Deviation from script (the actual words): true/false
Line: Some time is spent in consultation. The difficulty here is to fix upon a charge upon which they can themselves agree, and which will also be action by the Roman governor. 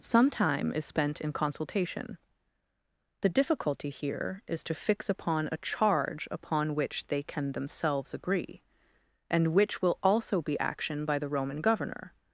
false